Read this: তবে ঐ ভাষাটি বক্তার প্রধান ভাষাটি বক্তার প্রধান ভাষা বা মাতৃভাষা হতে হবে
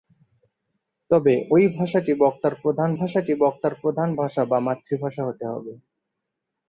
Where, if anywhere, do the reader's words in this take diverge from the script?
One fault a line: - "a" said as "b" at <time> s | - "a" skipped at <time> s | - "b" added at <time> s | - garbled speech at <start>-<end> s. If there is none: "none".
none